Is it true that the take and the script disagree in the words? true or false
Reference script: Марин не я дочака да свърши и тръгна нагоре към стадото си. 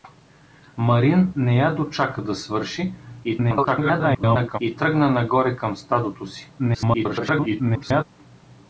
true